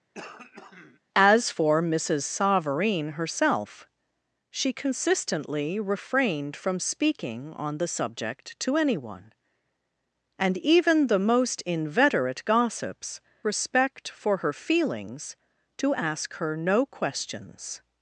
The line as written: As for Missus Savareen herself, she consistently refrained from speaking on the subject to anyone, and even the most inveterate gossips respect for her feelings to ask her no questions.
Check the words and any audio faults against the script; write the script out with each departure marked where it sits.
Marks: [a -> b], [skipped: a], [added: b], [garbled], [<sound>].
[throat clearing] As for Missus Savareen herself, she consistently refrained from speaking on the subject to anyone, and even the most inveterate gossips respect for her feelings to ask her no questions.